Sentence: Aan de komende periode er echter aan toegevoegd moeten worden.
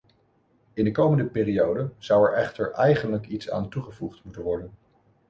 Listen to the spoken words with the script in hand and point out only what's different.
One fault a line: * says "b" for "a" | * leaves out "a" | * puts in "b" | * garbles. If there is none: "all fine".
* says "In" for "Aan"
* puts in "zou"
* puts in "eigenlijk iets"